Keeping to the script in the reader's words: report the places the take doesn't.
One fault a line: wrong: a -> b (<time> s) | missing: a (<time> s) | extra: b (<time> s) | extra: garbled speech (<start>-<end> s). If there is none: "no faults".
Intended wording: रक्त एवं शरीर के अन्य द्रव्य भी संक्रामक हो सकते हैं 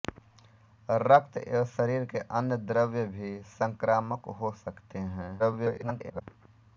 extra: garbled speech (5.4-6.2 s)